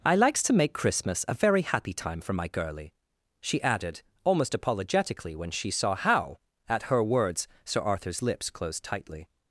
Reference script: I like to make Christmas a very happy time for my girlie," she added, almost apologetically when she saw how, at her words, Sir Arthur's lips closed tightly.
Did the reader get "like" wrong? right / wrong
wrong